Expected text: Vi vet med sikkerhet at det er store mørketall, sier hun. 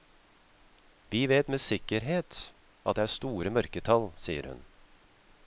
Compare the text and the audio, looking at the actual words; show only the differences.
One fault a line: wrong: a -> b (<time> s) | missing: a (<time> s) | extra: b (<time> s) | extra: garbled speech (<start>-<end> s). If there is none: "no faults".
no faults